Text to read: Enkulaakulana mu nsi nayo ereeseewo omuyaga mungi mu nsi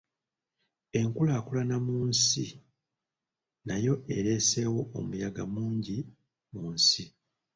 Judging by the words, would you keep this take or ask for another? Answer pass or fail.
pass